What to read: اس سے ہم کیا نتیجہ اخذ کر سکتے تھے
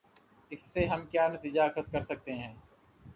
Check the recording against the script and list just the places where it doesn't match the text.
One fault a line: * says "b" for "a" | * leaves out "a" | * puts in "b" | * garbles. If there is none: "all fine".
* says "ہیں" for "تھے"